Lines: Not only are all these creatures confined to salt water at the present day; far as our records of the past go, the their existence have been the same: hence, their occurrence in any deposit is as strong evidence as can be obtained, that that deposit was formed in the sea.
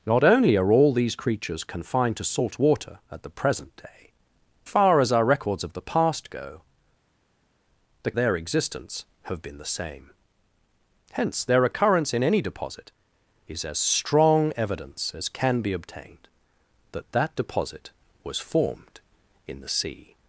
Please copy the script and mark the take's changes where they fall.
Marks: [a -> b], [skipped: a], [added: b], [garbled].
Not only are all these creatures confined to salt water at the present day; far as our records of the past go, the their existence have been the same: hence, their occurrence in any deposit is as strong evidence as can be obtained, that that deposit was formed in the sea.